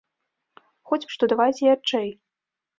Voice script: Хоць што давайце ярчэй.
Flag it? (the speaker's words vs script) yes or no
no